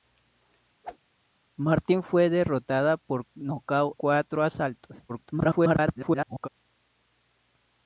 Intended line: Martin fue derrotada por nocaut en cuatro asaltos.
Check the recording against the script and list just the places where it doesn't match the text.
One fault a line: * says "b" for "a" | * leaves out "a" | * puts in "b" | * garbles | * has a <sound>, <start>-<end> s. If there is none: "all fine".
* has a whoosh, 0.8-1.0 s
* leaves out "en"
* garbles